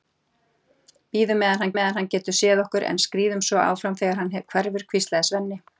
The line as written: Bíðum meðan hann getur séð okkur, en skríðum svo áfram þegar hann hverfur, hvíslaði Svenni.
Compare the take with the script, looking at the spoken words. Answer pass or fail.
fail